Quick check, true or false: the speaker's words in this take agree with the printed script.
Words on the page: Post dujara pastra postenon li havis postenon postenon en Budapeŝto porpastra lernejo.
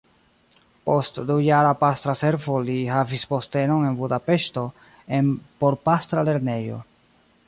false